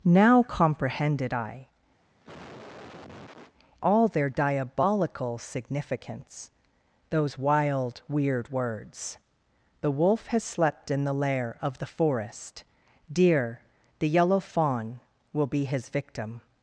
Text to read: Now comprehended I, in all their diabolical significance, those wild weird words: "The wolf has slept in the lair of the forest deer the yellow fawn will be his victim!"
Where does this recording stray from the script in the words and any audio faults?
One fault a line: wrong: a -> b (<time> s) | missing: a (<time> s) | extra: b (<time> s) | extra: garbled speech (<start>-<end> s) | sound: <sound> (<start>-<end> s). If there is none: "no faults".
missing: in (1.7 s)
sound: cough (2.0-3.5 s)